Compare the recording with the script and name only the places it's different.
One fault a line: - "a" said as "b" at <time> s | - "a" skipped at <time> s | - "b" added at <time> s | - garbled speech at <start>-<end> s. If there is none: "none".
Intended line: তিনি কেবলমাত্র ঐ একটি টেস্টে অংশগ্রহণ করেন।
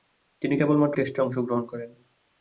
- "ঐ একটি" skipped at 1.0 s